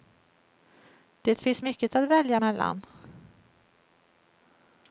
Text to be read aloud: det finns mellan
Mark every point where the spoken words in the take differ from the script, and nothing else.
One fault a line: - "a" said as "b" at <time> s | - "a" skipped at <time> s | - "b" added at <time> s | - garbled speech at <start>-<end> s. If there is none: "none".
- "mycket att välja" added at 1.6 s